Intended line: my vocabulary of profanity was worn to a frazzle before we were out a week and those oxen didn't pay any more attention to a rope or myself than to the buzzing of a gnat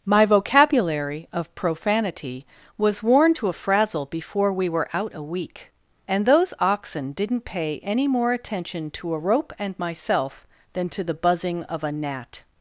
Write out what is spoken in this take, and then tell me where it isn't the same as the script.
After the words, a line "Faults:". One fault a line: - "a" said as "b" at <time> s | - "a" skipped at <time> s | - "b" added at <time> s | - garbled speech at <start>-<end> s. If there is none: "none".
my vocabulary of profanity was worn to a frazzle before we were out a week and those oxen didn't pay any more attention to a rope and myself than to the buzzing of a gnat
Faults:
- "or" said as "and" at 9.6 s